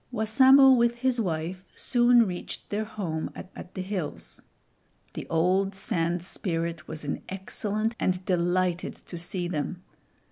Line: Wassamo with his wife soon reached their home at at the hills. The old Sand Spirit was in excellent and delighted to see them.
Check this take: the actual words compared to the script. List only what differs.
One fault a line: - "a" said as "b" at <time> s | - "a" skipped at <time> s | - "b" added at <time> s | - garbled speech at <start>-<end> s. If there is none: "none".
none